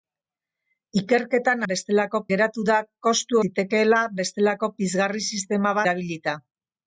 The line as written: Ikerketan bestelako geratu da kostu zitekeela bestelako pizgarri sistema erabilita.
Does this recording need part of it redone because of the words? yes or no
no